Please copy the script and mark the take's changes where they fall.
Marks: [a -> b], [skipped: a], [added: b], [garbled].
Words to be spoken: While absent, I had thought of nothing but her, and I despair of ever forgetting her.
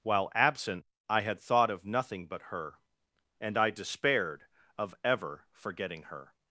While absent, I had thought of nothing but her, and I [despair -> despaired] of ever forgetting her.